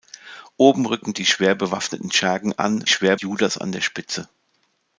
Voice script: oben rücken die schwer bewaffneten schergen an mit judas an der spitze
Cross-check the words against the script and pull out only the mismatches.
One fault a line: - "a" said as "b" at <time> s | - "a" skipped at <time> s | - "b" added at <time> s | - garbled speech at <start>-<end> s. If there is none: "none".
- "mit" said as "schwer" at 2.9 s